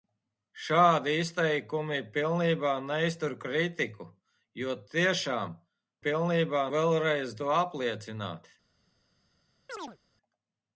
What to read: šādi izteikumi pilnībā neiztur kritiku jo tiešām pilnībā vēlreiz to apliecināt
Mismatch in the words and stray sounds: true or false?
true